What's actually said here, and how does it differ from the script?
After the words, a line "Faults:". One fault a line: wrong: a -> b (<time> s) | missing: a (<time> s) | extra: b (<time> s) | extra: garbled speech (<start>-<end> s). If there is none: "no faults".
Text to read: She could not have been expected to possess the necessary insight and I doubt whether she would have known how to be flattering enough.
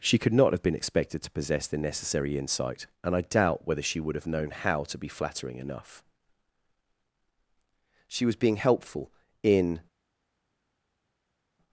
She could not have been expected to possess the necessary insight and I doubt whether she would have known how to be flattering enough. She was being helpful in
Faults:
extra: She was being helpful in (8.1 s)